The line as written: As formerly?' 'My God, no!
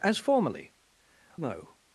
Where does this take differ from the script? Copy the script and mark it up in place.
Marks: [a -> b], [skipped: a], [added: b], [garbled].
As formerly?' [skipped: 'My God,] no!